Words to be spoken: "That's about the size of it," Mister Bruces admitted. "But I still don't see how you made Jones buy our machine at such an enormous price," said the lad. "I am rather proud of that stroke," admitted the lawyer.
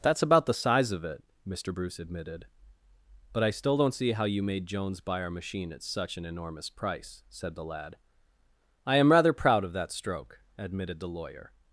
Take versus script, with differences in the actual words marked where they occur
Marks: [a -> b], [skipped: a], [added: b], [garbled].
"That's about the size of it," Mister [Bruces -> Bruce] admitted. "But I still don't see how you made Jones buy our machine at such an enormous price," said the lad. "I am rather proud of that stroke," admitted the lawyer.